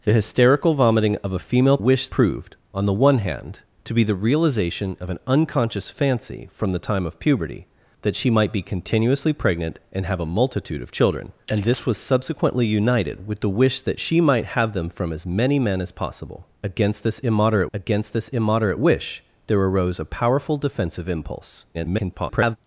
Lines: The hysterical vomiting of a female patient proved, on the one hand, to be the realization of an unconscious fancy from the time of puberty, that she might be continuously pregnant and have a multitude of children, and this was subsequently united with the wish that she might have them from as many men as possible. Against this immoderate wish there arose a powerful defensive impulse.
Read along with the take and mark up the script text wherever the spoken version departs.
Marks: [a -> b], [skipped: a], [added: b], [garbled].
The hysterical vomiting of a female [patient -> wish] proved, on the one hand, to be the realization of an unconscious fancy from the time of puberty, that she might be continuously pregnant and have a multitude of children, and this was subsequently united with the wish that she might have them from as many men as possible. Against this immoderate [added: against this immoderate] wish there arose a powerful defensive impulse. [garbled]